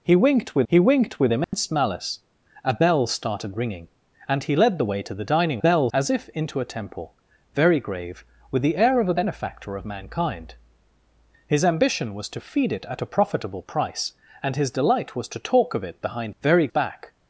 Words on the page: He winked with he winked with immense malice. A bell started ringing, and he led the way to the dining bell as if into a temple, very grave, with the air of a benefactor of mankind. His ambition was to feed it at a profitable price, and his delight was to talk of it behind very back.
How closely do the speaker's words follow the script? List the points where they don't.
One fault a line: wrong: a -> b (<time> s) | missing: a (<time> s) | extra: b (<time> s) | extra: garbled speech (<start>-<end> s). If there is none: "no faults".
no faults